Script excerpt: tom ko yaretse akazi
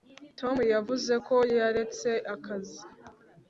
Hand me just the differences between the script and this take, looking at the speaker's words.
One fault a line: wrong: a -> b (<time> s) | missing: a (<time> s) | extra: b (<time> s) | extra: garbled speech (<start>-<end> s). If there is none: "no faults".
extra: yavuze (0.7 s)